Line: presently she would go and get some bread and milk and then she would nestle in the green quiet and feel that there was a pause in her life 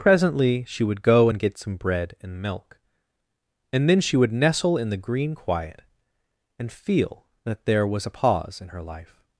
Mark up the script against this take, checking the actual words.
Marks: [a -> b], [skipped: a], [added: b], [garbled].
presently she would go and get some bread and milk and then she would nestle in the green quiet and feel that there was a pause in her life